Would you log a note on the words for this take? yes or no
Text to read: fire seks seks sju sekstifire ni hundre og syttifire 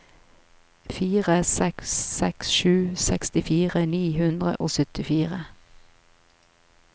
no